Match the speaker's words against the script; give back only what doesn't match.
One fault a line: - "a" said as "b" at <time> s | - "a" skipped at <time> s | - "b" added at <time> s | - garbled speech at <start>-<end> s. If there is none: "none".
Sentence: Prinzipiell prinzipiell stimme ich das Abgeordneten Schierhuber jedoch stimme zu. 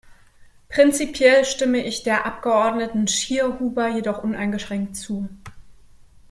- "prinzipiell" skipped at 1.4 s
- "das" said as "der" at 2.0 s
- "stimme" said as "uneingeschränkt" at 4.2 s